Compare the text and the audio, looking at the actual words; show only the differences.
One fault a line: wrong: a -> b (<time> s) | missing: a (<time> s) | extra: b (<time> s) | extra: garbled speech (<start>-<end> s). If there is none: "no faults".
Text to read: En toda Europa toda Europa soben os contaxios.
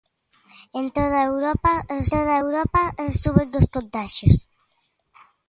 no faults